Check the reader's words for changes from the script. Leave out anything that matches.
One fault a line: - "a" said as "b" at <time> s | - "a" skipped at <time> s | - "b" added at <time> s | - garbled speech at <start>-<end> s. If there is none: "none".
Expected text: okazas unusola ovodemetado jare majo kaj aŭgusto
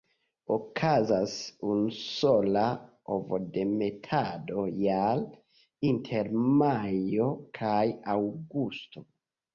- "inter" added at 5.9 s